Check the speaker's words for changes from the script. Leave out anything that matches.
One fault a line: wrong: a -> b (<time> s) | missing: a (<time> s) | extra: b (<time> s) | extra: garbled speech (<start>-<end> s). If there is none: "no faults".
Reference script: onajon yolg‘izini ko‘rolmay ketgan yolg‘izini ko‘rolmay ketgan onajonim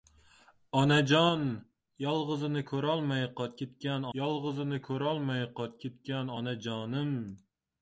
no faults